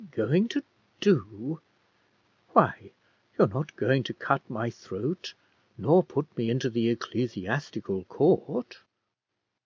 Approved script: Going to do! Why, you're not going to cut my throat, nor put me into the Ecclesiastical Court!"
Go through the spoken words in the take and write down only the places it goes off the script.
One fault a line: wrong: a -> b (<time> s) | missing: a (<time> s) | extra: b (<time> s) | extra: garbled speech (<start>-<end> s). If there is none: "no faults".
no faults